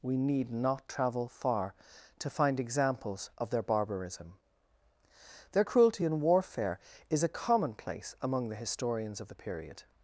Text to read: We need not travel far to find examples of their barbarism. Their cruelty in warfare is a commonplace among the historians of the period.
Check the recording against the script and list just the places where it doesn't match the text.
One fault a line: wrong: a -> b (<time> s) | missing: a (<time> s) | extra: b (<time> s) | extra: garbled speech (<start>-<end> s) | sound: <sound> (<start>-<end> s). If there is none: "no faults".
no faults